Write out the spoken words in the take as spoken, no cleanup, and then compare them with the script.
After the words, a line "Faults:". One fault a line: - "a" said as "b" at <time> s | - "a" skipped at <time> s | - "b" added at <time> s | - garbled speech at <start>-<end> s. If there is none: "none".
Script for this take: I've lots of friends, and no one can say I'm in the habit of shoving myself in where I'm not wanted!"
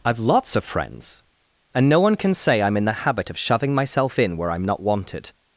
I've lots of friends, and no one can say I'm in the habit of shoving myself in where I'm not wanted!"
Faults:
none